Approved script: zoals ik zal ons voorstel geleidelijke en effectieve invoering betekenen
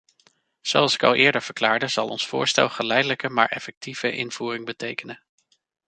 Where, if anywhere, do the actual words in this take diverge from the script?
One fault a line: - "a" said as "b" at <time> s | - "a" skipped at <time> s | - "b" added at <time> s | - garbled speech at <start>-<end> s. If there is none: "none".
- "al eerder verklaarde" added at 1.0 s
- "en" said as "maar" at 3.3 s